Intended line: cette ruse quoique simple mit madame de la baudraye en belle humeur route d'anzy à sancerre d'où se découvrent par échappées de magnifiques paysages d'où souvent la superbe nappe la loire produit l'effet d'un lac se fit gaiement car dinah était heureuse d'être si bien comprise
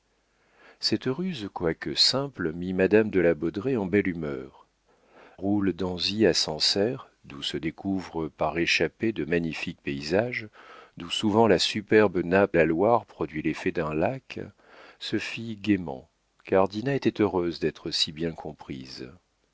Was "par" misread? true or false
false